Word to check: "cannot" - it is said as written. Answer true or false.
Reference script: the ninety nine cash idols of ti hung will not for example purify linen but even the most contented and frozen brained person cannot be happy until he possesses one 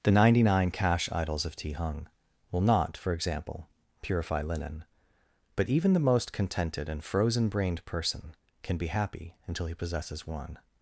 false